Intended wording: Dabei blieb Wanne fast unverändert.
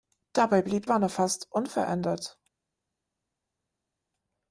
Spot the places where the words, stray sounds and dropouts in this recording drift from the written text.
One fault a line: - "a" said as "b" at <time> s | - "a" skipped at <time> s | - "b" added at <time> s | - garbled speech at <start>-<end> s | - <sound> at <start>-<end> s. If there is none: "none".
none